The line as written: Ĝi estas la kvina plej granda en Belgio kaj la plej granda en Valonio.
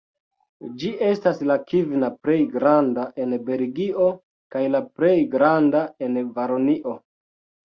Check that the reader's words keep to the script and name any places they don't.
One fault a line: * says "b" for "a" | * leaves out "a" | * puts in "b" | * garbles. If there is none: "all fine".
all fine